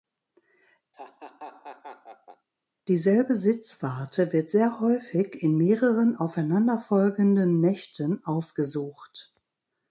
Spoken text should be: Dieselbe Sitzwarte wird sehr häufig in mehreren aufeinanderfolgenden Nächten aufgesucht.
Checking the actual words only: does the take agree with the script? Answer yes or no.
yes